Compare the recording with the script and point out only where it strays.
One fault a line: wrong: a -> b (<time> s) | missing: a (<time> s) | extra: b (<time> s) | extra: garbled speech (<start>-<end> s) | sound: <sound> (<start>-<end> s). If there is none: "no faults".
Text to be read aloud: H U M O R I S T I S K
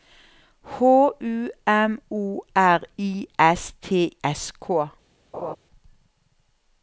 missing: I (4.2 s)
sound: laugh (5.3-5.6 s)